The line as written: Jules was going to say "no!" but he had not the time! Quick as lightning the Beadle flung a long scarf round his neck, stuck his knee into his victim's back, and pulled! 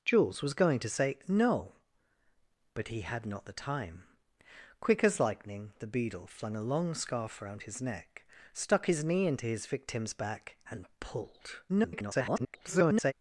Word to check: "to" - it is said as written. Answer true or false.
true